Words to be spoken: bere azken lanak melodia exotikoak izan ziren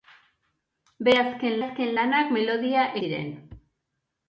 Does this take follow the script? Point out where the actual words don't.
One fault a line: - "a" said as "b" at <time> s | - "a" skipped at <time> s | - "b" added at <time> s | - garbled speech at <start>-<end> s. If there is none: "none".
- "azken" added at 1.6 s
- "exotikoak izan" skipped at 2.9 s